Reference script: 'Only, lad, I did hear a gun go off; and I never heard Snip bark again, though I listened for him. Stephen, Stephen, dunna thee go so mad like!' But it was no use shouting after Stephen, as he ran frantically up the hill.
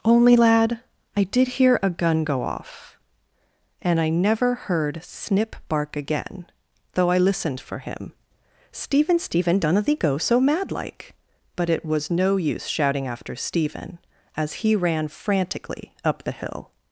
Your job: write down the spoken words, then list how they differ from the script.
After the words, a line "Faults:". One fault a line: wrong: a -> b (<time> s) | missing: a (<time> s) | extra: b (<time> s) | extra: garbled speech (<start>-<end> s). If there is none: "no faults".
'Only, lad, I did hear a gun go off; and I never heard Snip bark again, though I listened for him. Stephen, Stephen, dunna thee go so mad like!' But it was no use shouting after Stephen, as he ran frantically up the hill.
Faults:
no faults